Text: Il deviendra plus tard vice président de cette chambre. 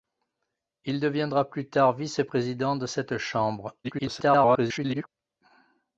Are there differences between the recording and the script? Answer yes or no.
yes